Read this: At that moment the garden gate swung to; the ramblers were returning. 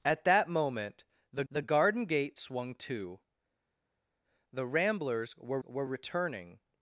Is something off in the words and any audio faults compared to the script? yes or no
yes